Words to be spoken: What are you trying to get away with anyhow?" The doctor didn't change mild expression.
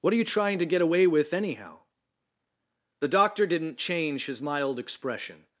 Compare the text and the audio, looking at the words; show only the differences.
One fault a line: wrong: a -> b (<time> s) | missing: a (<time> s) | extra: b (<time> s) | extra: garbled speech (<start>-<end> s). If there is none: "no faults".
extra: his (4.2 s)